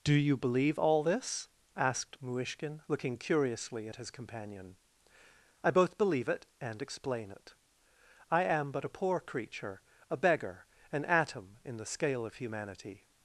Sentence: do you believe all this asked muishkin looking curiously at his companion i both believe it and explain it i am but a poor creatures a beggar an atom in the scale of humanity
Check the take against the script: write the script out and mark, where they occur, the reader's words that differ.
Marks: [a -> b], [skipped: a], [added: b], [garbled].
do you believe all this asked muishkin looking curiously at his companion i both believe it and explain it i am but a poor [creatures -> creature] a beggar an atom in the scale of humanity